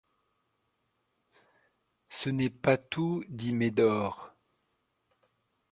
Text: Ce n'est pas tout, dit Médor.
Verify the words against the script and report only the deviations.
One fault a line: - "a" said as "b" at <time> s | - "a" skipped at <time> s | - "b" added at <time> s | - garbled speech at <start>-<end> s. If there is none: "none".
none